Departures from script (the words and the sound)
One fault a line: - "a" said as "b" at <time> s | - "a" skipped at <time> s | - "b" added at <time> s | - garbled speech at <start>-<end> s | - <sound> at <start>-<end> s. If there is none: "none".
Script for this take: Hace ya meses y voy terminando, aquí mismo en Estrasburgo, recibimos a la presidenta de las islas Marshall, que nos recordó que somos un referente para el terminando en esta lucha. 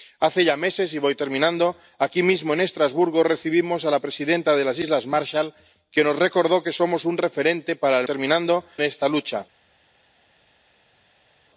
none